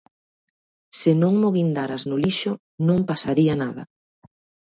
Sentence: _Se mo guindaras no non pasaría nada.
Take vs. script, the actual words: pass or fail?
fail